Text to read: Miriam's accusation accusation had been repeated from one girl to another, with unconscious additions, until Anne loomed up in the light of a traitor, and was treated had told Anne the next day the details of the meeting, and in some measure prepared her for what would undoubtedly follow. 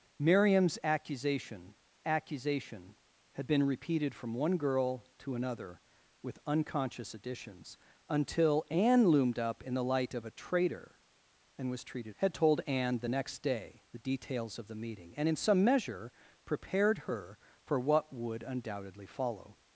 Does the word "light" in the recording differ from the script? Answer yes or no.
no